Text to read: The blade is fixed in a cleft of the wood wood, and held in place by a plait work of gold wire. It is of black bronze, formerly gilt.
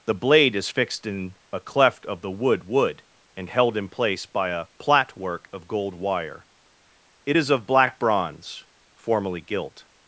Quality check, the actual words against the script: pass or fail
pass